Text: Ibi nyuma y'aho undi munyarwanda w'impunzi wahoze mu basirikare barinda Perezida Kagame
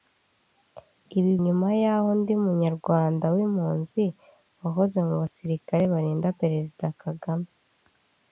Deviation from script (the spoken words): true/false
false